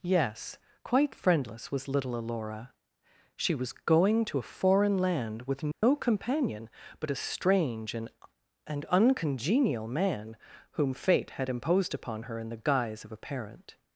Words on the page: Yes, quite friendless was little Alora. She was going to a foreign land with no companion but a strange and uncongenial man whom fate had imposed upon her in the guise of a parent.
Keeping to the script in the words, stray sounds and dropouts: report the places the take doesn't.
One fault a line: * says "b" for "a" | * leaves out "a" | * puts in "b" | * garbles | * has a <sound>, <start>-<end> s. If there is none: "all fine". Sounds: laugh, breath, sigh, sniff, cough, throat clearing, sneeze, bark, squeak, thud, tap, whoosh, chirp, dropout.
* has a dropout, 5.7-5.8 s
* puts in "and"